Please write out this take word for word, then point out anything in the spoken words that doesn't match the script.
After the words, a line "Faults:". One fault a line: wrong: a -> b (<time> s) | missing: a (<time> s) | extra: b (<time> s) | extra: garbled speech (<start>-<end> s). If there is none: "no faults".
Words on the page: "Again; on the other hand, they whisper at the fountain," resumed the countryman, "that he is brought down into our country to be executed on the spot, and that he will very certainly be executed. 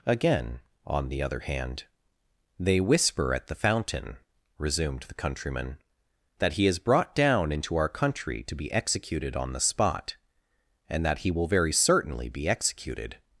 "Again; on the other hand, they whisper at the fountain," resumed the countryman, "that he is brought down into our country to be executed on the spot, and that he will very certainly be executed.
Faults:
no faults